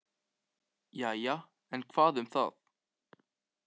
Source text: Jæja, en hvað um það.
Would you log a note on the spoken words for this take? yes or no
no